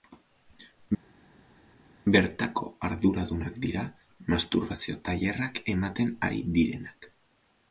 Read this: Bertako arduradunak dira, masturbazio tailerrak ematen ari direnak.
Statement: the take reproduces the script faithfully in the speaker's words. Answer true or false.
true